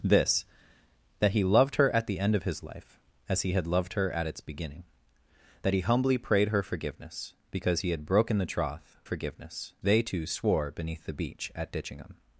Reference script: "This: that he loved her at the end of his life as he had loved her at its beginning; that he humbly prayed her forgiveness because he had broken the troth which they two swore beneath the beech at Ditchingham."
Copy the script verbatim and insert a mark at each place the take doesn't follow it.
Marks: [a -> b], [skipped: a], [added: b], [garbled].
"This: that he loved her at the end of his life as he had loved her at its beginning; that he humbly prayed her forgiveness because he had broken the troth [which -> forgiveness] they two swore beneath the beech at Ditchingham."